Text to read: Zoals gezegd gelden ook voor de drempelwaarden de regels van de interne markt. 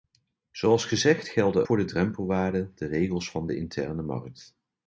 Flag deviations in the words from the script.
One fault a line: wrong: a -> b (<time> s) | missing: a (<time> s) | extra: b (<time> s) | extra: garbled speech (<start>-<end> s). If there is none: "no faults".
missing: ook (1.7 s)